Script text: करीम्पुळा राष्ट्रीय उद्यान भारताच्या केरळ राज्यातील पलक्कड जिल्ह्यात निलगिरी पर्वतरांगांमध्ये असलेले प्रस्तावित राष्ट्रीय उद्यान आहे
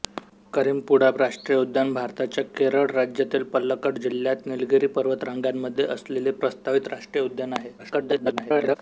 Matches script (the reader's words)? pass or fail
fail